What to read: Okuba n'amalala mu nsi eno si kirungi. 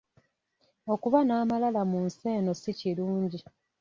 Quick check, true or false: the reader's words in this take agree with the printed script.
true